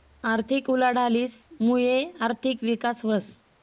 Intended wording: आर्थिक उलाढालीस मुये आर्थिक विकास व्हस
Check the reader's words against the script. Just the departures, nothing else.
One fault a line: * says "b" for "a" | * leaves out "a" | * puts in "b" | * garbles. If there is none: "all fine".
all fine